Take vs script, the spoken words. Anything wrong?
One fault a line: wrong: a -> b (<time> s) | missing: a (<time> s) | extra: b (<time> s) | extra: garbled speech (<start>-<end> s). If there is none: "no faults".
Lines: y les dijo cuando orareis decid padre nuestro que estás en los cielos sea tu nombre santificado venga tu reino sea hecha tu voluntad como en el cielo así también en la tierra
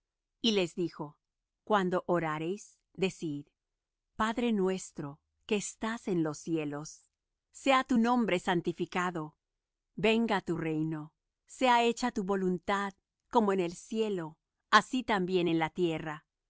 no faults